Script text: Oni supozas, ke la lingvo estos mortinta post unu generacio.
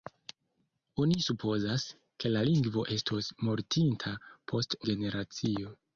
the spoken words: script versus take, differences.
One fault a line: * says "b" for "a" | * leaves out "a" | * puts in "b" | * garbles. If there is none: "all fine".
* leaves out "unu"